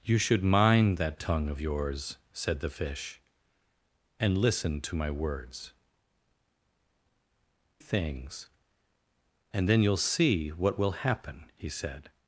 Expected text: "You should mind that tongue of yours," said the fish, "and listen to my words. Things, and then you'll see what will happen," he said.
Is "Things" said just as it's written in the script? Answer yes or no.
yes